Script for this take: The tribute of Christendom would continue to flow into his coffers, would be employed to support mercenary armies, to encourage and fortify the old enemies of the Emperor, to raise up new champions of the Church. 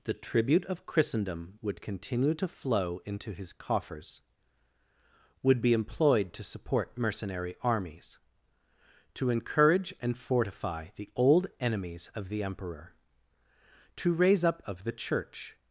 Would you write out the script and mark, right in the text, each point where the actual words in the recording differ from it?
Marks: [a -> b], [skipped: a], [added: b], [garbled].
The tribute of Christendom would continue to flow into his coffers, would be employed to support mercenary armies, to encourage and fortify the old enemies of the Emperor, to raise up [skipped: new champions] of the Church.